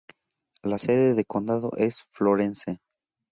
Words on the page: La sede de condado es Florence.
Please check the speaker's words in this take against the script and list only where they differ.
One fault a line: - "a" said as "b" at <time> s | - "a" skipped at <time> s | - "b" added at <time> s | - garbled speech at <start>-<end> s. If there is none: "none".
none